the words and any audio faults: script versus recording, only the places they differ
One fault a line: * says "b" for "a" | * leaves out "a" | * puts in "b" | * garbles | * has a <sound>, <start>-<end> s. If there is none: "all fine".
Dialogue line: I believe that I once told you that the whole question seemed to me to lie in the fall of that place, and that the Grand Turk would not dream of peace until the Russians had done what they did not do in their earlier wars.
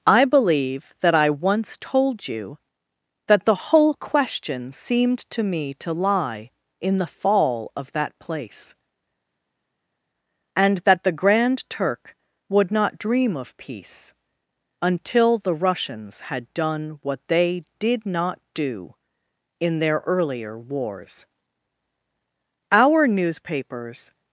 * puts in "Our newspapers"